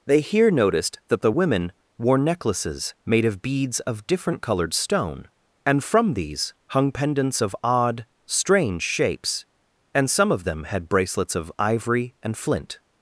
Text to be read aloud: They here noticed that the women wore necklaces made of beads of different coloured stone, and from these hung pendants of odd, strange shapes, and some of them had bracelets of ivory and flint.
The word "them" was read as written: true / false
true